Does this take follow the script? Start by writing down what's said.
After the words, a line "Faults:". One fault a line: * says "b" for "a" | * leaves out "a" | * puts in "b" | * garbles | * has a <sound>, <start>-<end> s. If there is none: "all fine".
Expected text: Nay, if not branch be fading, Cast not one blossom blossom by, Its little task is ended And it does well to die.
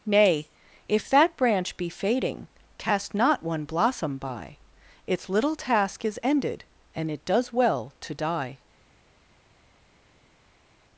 Nay, if that branch be fading, Cast not one blossom by, Its little task is ended And it does well to die.
Faults:
* says "that" for "not"
* leaves out "blossom"